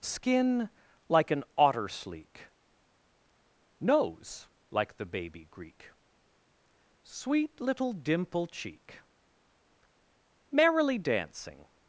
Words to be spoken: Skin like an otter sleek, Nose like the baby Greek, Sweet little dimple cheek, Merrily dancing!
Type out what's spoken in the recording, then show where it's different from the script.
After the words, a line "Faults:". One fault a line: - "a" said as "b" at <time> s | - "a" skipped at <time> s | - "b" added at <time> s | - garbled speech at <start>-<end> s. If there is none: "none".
Skin like an otter sleek, Nose like the baby Greek, Sweet little dimple cheek, Merrily dancing!
Faults:
none